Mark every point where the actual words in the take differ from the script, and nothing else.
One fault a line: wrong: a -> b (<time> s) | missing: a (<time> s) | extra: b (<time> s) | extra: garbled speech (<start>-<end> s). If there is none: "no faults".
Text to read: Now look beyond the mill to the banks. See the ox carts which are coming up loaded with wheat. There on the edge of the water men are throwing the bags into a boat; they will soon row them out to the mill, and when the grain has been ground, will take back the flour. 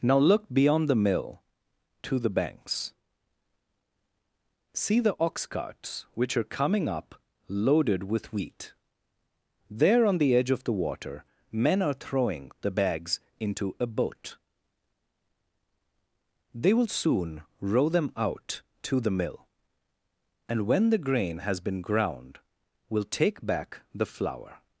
no faults